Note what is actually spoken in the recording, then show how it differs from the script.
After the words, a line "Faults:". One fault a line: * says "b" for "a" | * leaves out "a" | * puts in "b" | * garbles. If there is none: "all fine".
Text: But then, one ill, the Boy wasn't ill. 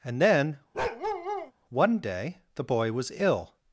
And then, one day, the Boy was ill.
Faults:
* says "And" for "But"
* says "day" for "ill"
* says "was" for "wasn't"